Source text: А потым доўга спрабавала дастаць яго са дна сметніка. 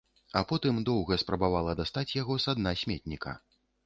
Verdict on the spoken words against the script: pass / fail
pass